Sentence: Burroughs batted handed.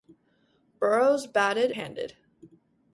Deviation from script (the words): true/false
false